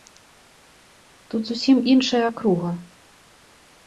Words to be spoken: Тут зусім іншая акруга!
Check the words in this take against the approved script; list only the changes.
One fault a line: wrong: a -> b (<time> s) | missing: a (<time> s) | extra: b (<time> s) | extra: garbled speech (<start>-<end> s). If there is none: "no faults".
no faults